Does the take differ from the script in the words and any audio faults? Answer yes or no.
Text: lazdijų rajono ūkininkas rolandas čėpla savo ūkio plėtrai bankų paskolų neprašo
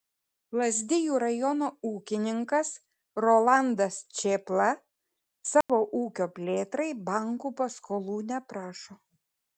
yes